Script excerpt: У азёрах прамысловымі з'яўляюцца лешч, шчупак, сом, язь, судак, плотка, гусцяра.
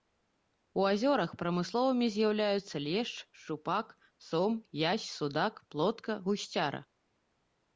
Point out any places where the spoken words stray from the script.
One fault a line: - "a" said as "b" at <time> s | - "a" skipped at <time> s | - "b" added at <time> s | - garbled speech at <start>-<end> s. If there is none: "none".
none